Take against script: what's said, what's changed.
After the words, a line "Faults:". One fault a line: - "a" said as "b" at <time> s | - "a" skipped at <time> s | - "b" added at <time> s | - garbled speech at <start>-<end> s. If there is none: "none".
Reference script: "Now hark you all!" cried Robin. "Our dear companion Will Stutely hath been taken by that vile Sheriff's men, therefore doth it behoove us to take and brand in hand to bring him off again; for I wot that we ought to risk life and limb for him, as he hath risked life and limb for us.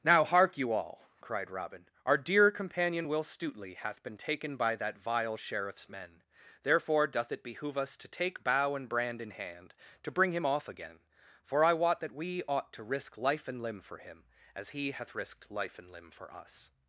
"Now hark you all!" cried Robin. "Our dear companion Will Stutely hath been taken by that vile Sheriff's men, therefore doth it behoove us to take bow and brand in hand to bring him off again; for I wot that we ought to risk life and limb for him, as he hath risked life and limb for us.
Faults:
- "bow" added at 8.4 s